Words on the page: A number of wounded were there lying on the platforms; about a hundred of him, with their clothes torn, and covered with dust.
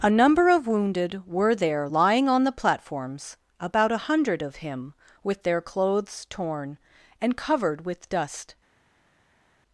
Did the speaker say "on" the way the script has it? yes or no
yes